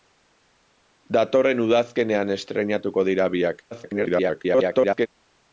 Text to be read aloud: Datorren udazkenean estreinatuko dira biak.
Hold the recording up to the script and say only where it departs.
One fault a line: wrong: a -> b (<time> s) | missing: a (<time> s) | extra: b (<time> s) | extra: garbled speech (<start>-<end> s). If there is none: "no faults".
extra: garbled speech (3.7-5.1 s)